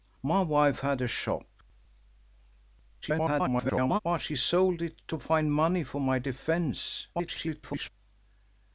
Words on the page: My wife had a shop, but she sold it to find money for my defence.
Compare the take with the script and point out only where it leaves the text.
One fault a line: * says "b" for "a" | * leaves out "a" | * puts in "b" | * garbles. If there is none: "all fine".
* garbles
* garbles